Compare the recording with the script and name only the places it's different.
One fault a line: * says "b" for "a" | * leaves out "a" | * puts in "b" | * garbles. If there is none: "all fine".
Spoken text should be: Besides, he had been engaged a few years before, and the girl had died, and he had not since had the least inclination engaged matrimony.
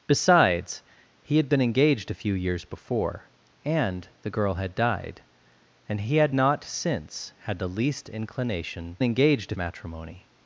all fine